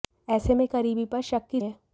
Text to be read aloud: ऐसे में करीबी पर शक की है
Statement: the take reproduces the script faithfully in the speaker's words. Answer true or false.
true